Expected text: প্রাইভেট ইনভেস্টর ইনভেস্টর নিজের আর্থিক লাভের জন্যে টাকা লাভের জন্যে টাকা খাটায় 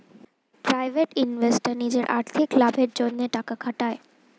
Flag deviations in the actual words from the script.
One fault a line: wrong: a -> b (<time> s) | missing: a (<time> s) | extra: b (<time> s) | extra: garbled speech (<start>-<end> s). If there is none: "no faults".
missing: ইনভেস্টর (1.7 s)
missing: লাভের জন্যে টাকা (3.5 s)